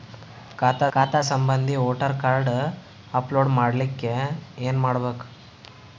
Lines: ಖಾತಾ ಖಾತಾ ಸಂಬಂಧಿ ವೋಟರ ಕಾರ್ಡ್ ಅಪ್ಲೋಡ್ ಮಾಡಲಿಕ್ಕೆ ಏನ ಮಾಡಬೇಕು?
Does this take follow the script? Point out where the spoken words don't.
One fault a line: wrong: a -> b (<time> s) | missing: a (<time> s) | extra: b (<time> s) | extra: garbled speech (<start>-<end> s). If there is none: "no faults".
no faults